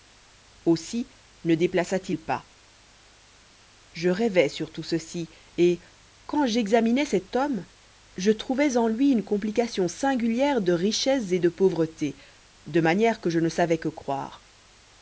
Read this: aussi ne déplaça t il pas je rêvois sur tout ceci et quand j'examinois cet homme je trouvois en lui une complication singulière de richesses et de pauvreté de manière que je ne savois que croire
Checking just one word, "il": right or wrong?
right